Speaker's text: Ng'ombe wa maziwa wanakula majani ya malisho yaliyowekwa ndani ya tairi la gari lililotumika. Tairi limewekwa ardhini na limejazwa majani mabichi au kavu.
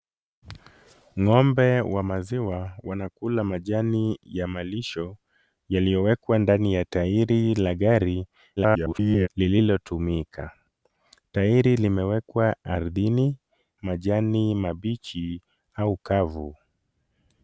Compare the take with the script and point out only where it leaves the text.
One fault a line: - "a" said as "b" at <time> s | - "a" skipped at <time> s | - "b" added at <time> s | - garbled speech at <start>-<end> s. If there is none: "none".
- garbled speech at 8.6-9.3 s
- "na limejazwa" skipped at 13.4 s